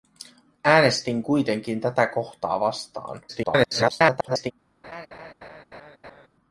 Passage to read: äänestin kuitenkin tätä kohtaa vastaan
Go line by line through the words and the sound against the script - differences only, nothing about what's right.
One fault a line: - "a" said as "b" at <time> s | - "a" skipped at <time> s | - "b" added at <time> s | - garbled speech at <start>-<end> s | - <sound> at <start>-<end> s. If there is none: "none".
- garbled speech at 3.3-4.5 s
- laugh at 4.8-6.3 s